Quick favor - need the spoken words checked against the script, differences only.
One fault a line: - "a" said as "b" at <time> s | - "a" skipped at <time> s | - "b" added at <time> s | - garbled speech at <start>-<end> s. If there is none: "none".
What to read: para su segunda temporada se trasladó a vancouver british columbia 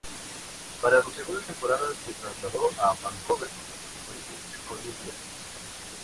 - "su" skipped at 1.0 s